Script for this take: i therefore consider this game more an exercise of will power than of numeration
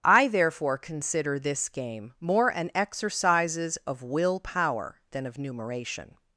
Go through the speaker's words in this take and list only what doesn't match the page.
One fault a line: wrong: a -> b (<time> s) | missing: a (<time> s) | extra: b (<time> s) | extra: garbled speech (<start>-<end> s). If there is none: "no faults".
wrong: exercise -> exercises (2.7 s)